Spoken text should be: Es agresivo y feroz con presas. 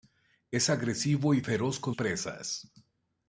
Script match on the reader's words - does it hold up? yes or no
yes